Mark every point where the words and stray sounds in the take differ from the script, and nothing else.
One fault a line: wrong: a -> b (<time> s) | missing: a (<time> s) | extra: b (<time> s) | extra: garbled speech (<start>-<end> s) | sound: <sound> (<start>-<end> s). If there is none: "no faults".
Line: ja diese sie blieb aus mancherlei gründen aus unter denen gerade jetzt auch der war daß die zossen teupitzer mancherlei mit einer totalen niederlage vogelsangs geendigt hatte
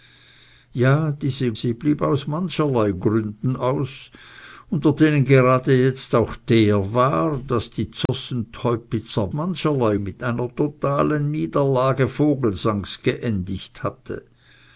sound: dropout (8.1-8.1 s)